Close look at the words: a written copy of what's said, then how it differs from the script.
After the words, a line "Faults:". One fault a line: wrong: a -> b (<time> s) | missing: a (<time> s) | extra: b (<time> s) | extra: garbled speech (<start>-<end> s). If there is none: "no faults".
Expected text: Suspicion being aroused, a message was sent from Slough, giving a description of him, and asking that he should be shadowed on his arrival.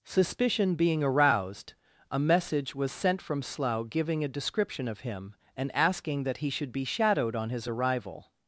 Suspicion being aroused, a message was sent from Slough, giving a description of him, and asking that he should be shadowed on his arrival.
Faults:
no faults